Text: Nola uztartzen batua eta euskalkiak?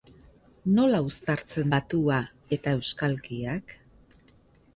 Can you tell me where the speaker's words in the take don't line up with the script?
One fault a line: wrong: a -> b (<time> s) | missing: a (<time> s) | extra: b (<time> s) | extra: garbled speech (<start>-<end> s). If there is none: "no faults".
no faults